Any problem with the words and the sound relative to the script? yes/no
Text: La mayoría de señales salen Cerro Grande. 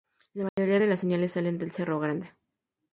yes